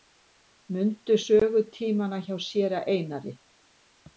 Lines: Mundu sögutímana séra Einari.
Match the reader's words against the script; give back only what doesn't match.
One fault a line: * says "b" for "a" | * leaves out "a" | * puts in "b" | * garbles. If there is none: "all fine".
* puts in "hjá"